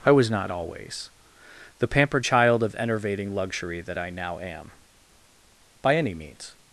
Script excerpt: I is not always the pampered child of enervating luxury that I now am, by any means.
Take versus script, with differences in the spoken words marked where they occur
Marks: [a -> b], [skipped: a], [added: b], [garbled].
I [is -> was] not always the pampered child of enervating luxury that I now am, by any means.